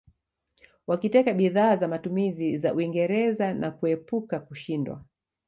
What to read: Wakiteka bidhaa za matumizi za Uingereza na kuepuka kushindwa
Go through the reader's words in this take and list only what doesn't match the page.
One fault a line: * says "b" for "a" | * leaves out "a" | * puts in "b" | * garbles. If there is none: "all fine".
all fine